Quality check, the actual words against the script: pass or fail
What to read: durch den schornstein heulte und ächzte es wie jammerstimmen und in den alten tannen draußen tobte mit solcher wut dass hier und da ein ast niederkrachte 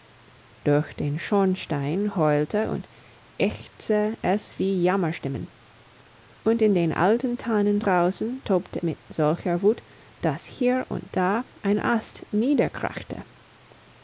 pass